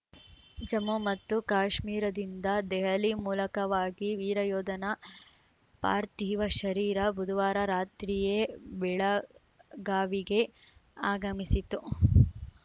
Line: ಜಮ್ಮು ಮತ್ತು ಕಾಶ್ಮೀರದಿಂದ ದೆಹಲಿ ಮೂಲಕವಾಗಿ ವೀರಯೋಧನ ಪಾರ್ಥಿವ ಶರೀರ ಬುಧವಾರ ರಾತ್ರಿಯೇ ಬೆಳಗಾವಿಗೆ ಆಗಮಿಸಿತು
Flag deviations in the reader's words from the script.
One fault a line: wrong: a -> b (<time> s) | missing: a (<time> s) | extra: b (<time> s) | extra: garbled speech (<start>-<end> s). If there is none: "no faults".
no faults